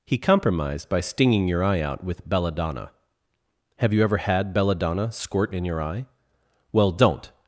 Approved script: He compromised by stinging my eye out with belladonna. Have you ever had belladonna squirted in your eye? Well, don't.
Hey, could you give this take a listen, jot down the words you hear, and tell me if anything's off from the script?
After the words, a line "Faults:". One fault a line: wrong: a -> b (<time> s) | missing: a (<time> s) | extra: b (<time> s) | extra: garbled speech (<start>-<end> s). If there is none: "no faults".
He compromised by stinging your eye out with belladonna. Have you ever had belladonna squirt in your eye? Well, don't.
Faults:
wrong: my -> your (1.5 s)
wrong: squirted -> squirt (5.1 s)